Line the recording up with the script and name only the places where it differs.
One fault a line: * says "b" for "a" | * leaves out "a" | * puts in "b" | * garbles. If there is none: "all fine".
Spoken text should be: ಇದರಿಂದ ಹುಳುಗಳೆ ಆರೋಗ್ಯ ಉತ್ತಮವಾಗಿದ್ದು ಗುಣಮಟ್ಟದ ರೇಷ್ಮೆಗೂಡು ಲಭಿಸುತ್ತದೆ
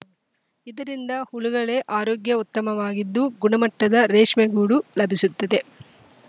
all fine